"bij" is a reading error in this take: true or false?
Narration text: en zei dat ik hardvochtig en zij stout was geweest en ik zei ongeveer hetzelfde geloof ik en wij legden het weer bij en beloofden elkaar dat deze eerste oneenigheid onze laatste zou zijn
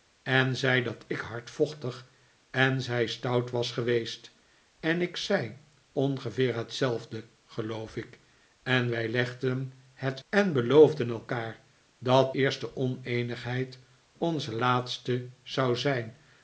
true